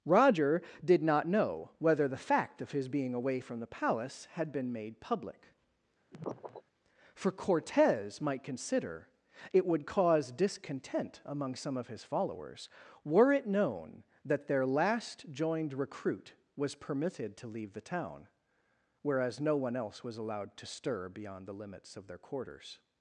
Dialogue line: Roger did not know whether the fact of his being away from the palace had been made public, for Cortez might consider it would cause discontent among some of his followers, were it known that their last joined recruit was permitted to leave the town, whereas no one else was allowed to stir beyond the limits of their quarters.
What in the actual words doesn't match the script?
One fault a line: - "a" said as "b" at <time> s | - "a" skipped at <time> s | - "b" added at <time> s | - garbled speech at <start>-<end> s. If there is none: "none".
none